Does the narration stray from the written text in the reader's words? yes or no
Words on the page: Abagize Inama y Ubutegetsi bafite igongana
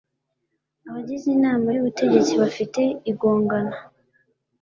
no